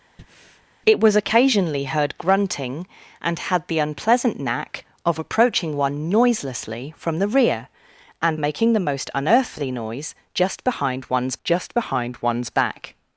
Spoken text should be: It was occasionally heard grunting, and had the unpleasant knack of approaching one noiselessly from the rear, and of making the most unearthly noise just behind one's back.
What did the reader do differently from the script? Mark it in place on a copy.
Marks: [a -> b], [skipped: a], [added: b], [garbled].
It was occasionally heard grunting, and had the unpleasant knack of approaching one noiselessly from the rear, and [skipped: of] making the most unearthly noise just behind one's [added: just behind one's] back.